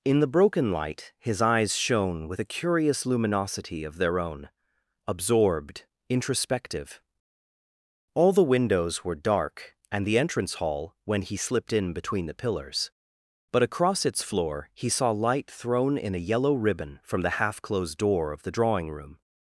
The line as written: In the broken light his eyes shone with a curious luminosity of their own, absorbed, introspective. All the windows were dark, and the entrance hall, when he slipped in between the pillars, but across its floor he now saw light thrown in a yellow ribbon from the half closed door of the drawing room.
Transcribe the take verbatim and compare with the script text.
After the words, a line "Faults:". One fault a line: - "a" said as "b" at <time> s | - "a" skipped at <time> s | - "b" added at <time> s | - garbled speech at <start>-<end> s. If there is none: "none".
In the broken light his eyes shone with a curious luminosity of their own, absorbed, introspective. All the windows were dark, and the entrance hall, when he slipped in between the pillars, but across its floor he saw light thrown in a yellow ribbon from the half closed door of the drawing room.
Faults:
- "now" skipped at 14.9 s